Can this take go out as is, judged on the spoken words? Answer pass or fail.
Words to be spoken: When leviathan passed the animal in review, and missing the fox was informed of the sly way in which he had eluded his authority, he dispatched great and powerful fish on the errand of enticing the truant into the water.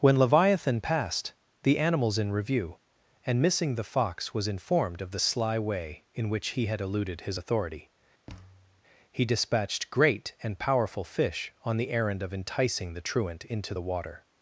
fail